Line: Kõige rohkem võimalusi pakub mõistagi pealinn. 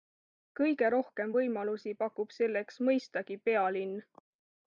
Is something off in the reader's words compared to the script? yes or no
yes